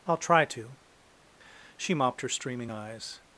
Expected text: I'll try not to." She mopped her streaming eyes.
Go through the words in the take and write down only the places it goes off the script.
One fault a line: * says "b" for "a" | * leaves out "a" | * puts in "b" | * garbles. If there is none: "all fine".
* leaves out "not"